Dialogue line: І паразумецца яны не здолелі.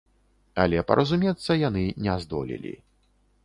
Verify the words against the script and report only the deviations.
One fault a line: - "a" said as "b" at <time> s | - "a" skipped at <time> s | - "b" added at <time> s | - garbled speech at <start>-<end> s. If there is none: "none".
- "І" said as "Але" at 0.6 s